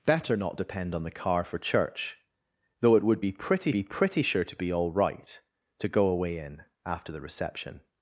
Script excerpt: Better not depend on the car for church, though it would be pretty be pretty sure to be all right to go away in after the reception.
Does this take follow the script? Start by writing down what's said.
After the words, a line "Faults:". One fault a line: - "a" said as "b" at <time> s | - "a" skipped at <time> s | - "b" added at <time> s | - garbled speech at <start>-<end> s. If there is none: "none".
Better not depend on the car for church, though it would be pretty be pretty sure to be all right to go away in after the reception.
Faults:
none